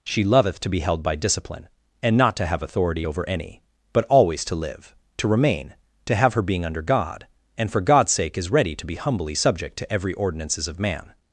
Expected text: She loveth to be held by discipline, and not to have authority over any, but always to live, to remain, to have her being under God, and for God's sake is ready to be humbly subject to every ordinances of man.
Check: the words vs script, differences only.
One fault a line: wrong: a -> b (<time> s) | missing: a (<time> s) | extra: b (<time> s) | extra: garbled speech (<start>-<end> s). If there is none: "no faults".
no faults